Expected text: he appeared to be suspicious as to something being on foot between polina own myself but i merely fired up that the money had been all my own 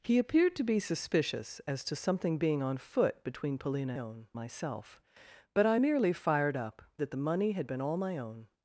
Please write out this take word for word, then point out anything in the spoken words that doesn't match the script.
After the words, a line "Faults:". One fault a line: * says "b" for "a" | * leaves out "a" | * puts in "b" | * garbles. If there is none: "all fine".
he appeared to be suspicious as to something being on foot between polina own myself but i merely fired up that the money had been all my own
Faults:
all fine